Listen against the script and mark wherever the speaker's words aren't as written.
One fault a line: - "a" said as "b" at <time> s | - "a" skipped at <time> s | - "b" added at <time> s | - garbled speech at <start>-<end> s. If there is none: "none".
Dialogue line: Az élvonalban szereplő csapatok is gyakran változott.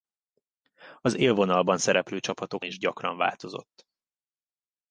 none